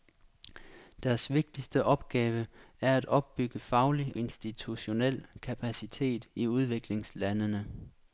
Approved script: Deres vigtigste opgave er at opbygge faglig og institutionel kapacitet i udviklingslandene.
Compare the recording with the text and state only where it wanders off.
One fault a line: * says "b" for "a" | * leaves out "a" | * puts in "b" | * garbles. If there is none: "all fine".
* leaves out "og"